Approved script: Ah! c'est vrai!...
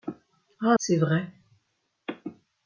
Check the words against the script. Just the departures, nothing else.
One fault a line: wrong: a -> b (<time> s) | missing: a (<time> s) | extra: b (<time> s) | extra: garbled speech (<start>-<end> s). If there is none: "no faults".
no faults